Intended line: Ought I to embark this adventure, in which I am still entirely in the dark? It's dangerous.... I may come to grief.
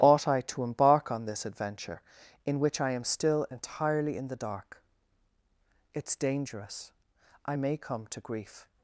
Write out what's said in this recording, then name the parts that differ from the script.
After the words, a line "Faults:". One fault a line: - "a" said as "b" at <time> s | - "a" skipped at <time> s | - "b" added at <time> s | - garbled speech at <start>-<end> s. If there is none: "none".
Ought I to embark on this adventure, in which I am still entirely in the dark? It's dangerous.... I may come to grief.
Faults:
- "on" added at 1.1 s